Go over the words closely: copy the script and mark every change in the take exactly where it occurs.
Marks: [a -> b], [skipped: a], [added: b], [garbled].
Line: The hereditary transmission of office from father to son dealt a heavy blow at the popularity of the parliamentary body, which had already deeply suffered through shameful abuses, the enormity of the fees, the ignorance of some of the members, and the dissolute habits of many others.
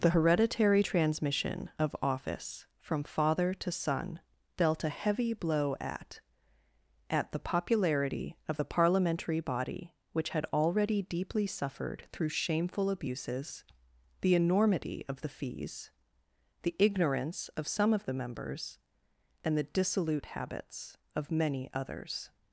The hereditary transmission of office from father to son dealt a heavy blow at [added: at] the popularity of the parliamentary body, which had already deeply suffered through shameful abuses, the enormity of the fees, the ignorance of some of the members, and the dissolute habits of many others.